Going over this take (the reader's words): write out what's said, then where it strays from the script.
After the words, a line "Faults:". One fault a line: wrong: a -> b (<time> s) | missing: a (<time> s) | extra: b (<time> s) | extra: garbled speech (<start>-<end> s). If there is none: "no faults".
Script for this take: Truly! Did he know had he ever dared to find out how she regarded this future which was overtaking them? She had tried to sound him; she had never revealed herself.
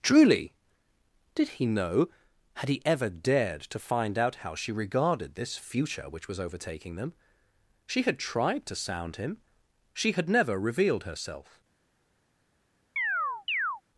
Truly! Did he know had he ever dared to find out how she regarded this future which was overtaking them? She had tried to sound him; she had never revealed herself.
Faults:
no faults